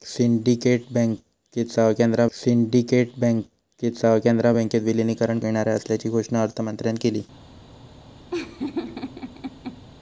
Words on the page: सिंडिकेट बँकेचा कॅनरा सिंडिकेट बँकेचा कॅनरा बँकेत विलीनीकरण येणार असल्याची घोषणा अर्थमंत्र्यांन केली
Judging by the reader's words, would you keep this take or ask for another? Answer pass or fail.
pass